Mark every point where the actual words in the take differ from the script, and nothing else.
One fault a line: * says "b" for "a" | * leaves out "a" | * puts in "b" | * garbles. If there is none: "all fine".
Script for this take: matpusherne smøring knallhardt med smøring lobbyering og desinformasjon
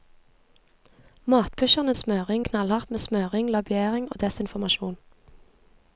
all fine